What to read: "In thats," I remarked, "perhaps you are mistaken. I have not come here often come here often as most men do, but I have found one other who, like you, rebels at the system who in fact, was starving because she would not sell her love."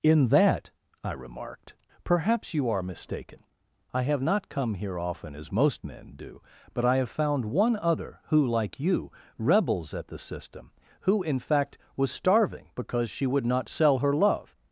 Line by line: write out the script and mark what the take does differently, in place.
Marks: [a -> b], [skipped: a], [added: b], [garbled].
"In [thats," -> that] I remarked, "perhaps you are mistaken. I have not come here often [skipped: come here often] as most men do, but I have found one other who, like you, rebels at the system who in fact, was starving because she would not sell her love."